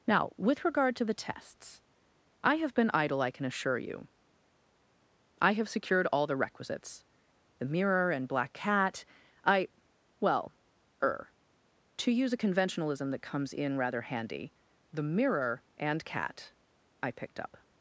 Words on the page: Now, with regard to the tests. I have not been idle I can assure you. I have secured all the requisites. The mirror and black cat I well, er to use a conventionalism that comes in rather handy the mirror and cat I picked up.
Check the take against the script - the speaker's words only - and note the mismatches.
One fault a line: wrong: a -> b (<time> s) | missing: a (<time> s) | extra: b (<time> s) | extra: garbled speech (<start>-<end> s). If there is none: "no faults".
missing: not (2.7 s)